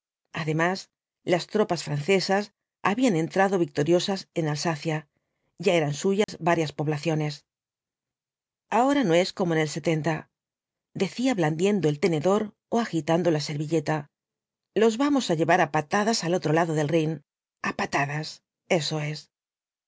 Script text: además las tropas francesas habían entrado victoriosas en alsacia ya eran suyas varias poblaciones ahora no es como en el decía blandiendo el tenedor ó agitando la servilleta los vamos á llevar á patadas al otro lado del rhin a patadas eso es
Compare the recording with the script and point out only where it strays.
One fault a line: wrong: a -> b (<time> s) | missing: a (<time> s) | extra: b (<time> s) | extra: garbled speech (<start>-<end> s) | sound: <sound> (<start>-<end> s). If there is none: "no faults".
sound: dropout (6.2-6.3 s)